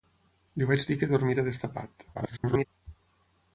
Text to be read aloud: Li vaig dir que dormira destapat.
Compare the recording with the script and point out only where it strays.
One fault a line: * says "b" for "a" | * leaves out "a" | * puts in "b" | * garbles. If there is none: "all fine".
* garbles